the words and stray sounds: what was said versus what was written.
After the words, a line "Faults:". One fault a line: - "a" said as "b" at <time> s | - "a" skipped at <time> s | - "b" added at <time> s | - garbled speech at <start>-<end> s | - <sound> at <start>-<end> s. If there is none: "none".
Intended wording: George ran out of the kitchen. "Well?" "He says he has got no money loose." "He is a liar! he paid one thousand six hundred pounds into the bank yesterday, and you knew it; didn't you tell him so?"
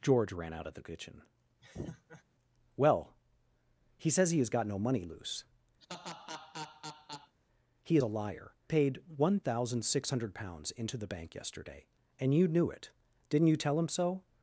George ran out of the kitchen. "Well?" "He says he has got no money loose." "He a liar! paid one thousand six hundred pounds into the bank yesterday, and you knew it; didn't you tell him so?"
Faults:
- laugh at 1.6-2.2 s
- laugh at 5.8-7.3 s
- "is" skipped at 8.0 s
- "he" skipped at 8.5 s